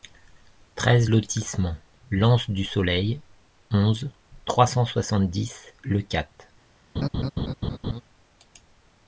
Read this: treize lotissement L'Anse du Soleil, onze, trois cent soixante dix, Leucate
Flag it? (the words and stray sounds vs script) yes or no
yes